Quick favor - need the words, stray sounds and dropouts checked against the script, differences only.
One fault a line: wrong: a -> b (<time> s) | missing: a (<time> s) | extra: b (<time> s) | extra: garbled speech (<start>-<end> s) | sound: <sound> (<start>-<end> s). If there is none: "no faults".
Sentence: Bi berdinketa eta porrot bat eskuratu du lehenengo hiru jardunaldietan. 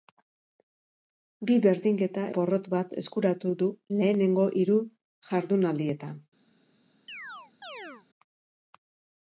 missing: eta (2.2 s)
sound: chirp (7.1-8.1 s)